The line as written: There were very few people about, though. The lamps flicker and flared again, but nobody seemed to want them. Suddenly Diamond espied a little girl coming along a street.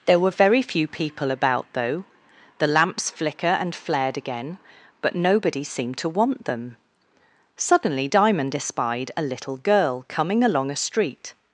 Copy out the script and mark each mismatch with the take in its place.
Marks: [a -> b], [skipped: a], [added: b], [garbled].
There were very few people about, though. The lamps flicker and flared again, but nobody seemed to want them. Suddenly Diamond espied a little girl coming along a street.